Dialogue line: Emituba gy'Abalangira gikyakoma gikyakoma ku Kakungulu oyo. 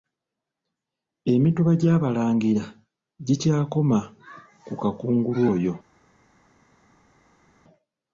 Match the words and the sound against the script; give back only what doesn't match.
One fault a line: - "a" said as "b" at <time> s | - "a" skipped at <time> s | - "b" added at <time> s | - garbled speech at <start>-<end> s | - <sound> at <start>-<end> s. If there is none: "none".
- "gikyakoma" skipped at 4.0 s